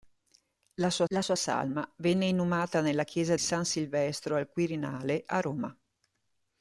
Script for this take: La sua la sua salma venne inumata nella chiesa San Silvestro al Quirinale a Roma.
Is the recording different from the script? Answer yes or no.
no